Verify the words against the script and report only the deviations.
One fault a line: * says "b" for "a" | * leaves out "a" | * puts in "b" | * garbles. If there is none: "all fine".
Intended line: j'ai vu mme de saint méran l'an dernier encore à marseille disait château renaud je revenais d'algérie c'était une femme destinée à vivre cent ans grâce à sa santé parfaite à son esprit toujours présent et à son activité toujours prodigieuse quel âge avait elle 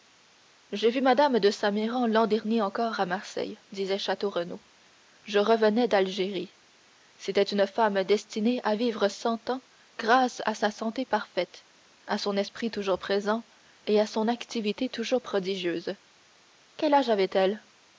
all fine